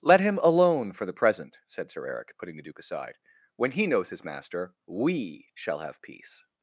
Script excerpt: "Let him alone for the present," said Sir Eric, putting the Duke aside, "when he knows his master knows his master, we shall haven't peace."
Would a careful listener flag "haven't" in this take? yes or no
yes